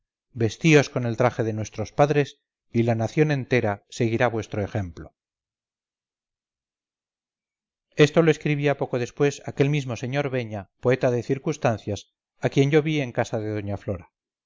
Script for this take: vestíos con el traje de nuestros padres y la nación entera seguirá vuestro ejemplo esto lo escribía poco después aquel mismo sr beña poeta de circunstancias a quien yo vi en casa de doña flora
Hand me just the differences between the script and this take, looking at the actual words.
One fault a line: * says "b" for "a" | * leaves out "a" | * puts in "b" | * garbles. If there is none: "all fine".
all fine